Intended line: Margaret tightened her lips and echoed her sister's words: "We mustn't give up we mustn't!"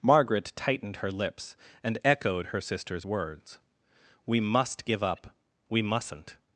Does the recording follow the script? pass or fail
fail